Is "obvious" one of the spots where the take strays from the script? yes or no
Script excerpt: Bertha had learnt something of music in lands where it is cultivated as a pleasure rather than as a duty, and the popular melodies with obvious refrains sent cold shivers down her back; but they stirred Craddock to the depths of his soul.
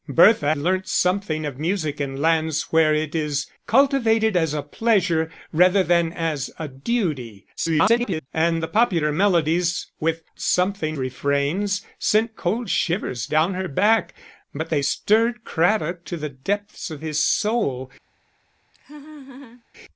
yes